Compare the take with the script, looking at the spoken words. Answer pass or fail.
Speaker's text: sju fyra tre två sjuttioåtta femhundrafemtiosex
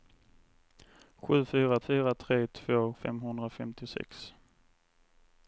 fail